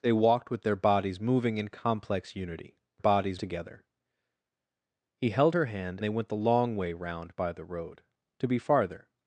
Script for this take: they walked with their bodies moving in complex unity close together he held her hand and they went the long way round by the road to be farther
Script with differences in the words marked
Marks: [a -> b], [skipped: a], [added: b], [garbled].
they walked with their bodies moving in complex unity [close -> bodies] together he held her hand [skipped: and] they went the long way round by the road to be farther